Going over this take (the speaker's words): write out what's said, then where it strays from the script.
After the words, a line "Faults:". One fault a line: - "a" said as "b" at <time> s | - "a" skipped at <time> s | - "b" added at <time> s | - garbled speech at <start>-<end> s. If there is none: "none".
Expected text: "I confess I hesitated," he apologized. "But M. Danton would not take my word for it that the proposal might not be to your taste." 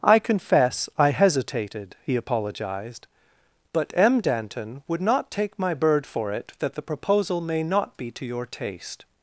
"I confess I hesitated," he apologized. "But M. Danton would not take my bird for it that the proposal may not be to your taste."
Faults:
- "word" said as "bird" at 5.7 s
- "might" said as "may" at 7.4 s